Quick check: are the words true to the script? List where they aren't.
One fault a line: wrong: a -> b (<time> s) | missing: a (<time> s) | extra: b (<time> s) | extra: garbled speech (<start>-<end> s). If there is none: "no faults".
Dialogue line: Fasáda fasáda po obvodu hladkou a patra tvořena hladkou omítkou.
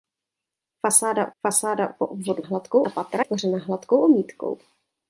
no faults